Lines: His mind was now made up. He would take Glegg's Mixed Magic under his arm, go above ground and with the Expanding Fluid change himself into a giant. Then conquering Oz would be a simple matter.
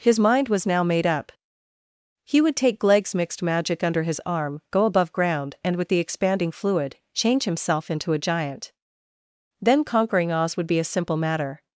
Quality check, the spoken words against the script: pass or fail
pass